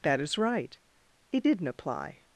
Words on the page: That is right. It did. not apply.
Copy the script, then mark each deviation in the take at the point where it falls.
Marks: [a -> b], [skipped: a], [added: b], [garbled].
That is right. It did. not apply.